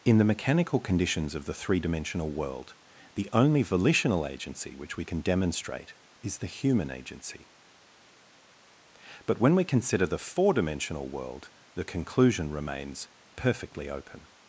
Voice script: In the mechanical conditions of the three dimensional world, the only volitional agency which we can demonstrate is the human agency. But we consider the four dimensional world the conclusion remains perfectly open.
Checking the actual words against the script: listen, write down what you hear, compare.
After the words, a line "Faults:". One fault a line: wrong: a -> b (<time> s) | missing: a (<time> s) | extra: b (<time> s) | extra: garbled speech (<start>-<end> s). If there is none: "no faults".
In the mechanical conditions of the three dimensional world, the only volitional agency which we can demonstrate is the human agency. But when we consider the four dimensional world the conclusion remains perfectly open.
Faults:
extra: when (9.4 s)